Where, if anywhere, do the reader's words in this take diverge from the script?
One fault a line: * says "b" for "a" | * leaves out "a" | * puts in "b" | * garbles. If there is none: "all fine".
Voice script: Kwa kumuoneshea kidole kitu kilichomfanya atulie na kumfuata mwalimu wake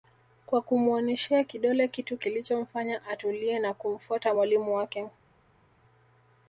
all fine